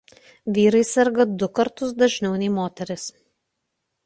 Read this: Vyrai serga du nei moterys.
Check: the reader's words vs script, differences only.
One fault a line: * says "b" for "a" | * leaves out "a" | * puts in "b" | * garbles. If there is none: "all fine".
* puts in "kartus dažniau"